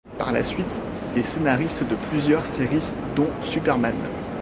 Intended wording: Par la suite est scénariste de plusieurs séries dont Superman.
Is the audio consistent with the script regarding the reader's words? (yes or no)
yes